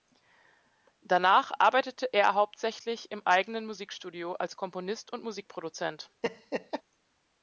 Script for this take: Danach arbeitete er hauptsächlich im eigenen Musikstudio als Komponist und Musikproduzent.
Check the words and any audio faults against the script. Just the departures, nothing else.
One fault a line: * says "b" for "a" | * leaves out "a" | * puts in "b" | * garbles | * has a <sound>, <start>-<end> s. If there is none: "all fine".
* has a laugh, 6.2-6.8 s